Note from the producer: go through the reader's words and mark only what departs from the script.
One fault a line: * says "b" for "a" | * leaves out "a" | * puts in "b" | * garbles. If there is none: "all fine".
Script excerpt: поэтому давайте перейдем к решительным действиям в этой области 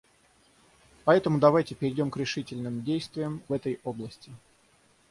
* leaves out "в"